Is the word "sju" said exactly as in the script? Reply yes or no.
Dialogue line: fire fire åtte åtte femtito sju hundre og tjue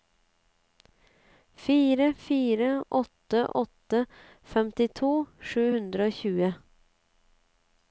yes